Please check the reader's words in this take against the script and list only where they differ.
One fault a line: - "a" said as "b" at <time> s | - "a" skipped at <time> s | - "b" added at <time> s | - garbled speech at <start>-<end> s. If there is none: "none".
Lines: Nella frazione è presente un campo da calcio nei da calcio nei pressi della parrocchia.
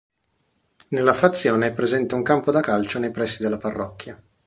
- "da calcio nei" skipped at 3.1 s